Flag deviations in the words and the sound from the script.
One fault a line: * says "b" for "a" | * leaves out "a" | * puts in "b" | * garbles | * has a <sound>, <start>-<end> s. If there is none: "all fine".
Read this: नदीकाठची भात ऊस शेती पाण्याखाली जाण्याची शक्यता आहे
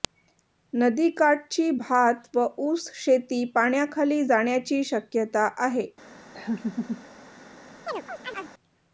* puts in "व"
* has a laugh, 6.3-7.0 s
* has a chirp, 7.9-8.5 s